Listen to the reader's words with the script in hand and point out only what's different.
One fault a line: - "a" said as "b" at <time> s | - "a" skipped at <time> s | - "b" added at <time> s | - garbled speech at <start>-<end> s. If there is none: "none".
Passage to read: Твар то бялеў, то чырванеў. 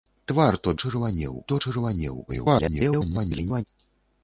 - "бялеў" said as "чырванеў" at 0.8 s
- garbled speech at 2.3-3.6 s